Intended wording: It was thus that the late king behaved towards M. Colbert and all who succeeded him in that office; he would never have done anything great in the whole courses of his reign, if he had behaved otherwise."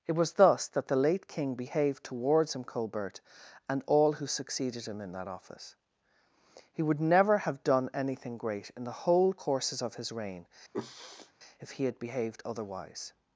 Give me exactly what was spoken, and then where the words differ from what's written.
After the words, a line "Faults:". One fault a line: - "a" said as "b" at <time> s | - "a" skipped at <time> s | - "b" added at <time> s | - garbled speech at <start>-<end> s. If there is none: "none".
It was thus that the late king behaved towards M. Colbert and all who succeeded him in that office; he would never have done anything great in the whole courses of his reign, if he had behaved otherwise."
Faults:
none